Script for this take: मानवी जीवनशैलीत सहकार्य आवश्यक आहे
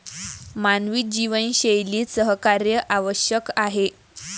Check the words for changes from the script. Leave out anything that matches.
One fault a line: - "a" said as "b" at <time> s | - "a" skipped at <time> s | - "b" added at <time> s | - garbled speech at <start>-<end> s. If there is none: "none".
none